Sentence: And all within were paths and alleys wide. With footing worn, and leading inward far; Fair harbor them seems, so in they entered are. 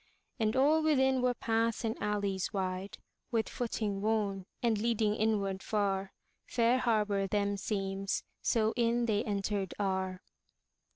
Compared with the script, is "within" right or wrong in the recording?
right